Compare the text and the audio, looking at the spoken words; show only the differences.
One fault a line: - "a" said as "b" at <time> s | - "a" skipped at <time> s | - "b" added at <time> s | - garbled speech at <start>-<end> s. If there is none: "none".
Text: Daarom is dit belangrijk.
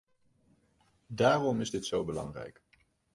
- "zo" added at 1.9 s